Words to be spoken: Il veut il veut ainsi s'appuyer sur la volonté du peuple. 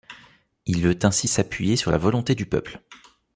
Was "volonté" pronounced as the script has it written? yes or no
yes